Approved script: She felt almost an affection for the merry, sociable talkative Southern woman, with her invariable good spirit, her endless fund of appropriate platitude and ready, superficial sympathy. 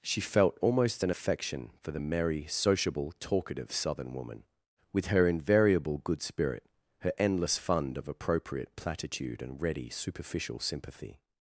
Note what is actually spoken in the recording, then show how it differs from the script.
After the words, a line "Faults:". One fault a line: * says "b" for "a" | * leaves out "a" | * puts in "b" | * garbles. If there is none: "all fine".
She felt almost an affection for the merry, sociable talkative Southern woman, with her invariable good spirit, her endless fund of appropriate platitude and ready, superficial sympathy.
Faults:
all fine